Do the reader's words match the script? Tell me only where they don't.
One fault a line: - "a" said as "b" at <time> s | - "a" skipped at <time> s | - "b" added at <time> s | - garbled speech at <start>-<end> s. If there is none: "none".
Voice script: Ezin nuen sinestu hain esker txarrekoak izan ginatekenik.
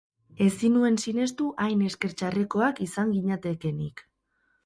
none